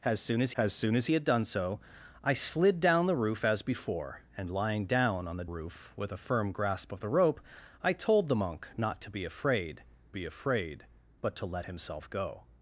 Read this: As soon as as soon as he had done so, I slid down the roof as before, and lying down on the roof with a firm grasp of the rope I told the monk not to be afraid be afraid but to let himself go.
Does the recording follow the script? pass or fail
pass